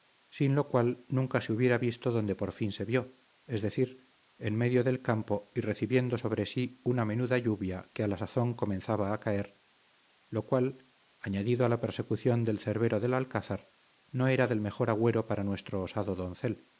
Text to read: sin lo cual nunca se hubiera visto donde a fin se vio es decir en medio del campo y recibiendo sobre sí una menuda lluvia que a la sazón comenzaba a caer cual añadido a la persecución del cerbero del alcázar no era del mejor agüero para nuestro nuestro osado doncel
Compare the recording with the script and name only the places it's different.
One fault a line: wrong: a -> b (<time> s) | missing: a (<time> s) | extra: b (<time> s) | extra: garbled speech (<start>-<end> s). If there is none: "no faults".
wrong: a -> por (2.4 s)
extra: lo (10.3 s)
missing: nuestro (15.8 s)